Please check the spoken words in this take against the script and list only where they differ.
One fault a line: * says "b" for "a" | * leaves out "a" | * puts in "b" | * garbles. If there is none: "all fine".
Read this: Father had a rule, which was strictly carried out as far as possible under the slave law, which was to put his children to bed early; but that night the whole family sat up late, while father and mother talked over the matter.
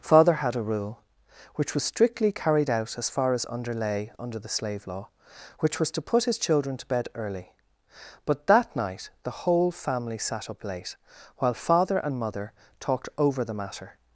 * says "underlay" for "possible"